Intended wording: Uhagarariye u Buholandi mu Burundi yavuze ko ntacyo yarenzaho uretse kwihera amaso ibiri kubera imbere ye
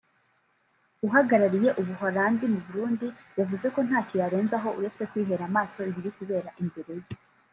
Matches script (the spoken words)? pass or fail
pass